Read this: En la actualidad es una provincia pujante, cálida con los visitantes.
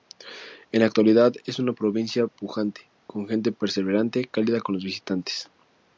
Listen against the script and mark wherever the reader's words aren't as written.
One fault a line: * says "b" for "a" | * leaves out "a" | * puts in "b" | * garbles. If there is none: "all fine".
* puts in "con gente perseverante"